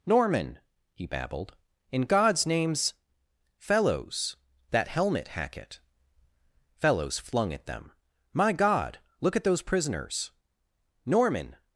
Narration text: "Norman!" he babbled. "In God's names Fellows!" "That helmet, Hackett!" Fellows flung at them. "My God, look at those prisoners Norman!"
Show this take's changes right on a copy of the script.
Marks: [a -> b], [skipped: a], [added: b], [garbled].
"Norman!" he babbled. "In God's names Fellows!" "That helmet, Hackett!" Fellows flung at them. "My God, look at those prisoners Norman!"